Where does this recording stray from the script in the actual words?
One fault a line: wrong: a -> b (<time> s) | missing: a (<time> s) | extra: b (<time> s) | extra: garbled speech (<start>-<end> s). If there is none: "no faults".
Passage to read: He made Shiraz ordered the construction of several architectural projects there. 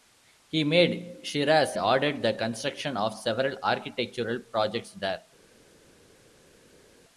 no faults